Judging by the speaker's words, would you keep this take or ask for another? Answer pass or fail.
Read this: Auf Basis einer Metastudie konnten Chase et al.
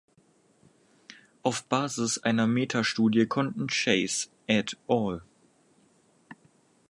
pass